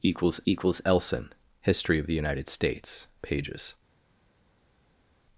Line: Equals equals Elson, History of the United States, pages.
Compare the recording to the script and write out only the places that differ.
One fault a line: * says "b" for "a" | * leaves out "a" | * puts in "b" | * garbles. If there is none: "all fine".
all fine